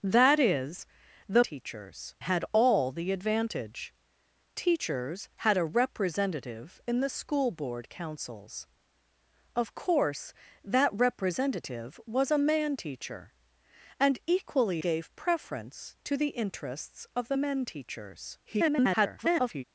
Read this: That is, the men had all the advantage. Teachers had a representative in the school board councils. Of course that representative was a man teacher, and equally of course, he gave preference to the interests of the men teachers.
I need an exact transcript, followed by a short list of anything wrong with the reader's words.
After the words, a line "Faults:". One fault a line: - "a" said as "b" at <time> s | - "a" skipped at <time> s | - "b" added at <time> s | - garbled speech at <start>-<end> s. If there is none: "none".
That is, the teachers had all the advantage. Teachers had a representative in the school board councils. Of course that representative was a man teacher, and equally gave preference to the interests of the men teachers. [garbled]
Faults:
- "men" said as "teachers" at 1.4 s
- "of course he" skipped at 14.8 s
- garbled speech at 18.4-19.6 s